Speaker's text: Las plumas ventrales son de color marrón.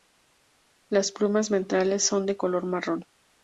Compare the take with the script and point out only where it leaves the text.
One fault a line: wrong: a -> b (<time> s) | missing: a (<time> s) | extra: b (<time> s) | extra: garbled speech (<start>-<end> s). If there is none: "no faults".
no faults